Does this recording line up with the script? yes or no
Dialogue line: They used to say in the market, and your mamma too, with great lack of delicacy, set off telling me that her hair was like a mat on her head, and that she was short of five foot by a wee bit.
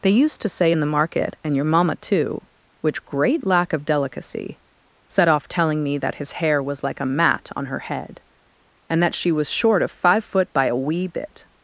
no